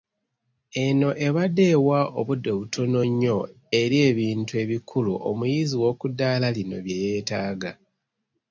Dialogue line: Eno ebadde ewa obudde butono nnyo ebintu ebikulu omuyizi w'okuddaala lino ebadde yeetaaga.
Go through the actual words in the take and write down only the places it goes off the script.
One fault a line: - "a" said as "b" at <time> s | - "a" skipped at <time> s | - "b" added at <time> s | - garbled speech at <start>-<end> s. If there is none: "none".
- "eri" added at 3.8 s
- "ebadde" said as "bye" at 6.8 s